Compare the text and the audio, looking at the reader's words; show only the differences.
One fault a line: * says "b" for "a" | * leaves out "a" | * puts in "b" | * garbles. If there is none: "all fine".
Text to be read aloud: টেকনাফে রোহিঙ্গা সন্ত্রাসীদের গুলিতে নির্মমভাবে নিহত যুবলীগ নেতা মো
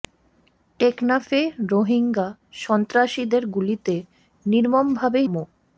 * leaves out "নিহত যুবলীগ নেতা"